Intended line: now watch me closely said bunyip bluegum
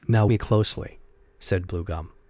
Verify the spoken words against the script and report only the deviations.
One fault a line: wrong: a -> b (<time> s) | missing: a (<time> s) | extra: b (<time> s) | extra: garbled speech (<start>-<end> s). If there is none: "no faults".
missing: watch (0.2 s)
missing: bunyip (1.7 s)